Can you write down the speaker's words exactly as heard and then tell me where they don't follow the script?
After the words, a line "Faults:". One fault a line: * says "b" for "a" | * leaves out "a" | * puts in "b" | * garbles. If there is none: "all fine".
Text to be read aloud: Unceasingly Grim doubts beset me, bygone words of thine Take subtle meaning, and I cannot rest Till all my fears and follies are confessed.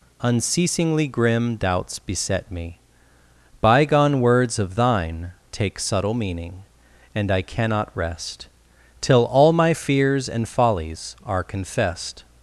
Unceasingly Grim doubts beset me, bygone words of thine Take subtle meaning, and I cannot rest Till all my fears and follies are confessed.
Faults:
all fine